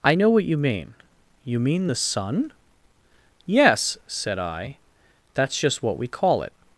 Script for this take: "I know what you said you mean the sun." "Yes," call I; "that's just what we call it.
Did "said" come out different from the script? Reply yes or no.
yes